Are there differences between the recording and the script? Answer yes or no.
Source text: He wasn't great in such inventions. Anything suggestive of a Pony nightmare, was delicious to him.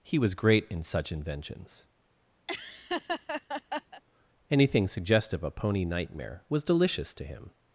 yes